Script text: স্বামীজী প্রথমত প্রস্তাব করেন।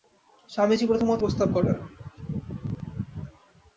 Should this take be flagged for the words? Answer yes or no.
no